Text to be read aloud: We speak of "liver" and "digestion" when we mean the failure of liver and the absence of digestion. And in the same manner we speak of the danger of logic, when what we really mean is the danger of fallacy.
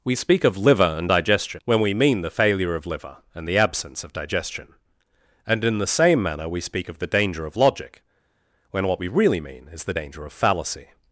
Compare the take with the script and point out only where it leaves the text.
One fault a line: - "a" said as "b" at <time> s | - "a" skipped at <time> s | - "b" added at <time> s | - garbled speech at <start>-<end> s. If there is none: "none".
none